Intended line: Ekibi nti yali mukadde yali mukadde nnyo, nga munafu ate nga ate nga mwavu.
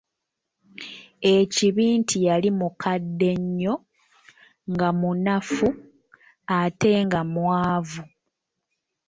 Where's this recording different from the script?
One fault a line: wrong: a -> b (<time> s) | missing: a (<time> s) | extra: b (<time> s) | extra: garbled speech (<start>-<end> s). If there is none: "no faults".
missing: yali mukadde (3.3 s)
missing: ate nga (7.2 s)